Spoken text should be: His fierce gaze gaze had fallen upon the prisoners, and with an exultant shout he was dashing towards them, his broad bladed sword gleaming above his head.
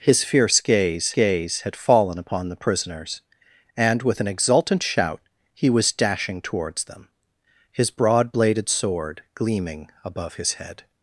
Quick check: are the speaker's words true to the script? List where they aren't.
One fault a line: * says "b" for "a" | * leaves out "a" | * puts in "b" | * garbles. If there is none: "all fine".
all fine